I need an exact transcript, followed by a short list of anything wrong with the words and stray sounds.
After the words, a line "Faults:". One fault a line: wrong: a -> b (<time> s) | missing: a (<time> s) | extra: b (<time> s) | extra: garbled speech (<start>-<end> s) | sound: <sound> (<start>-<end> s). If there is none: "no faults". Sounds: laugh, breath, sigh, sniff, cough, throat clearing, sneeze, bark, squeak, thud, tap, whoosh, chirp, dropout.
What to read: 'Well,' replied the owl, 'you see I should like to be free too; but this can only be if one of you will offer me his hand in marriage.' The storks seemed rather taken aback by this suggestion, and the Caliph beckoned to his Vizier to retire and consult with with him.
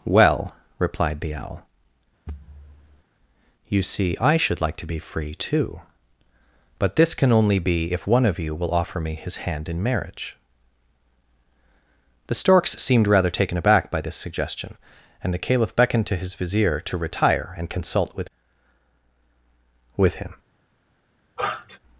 'Well,' replied the owl, 'you see I should like to be free too; but this can only be if one of you will offer me his hand in marriage.' The storks seemed rather taken aback by this suggestion, and the Caliph beckoned to his Vizier to retire and consult with with him.
Faults:
sound: thud (2.3-3.0 s)
sound: sniff (21.4-21.8 s)